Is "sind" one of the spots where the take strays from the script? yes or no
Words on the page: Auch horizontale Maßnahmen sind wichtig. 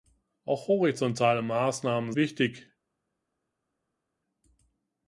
yes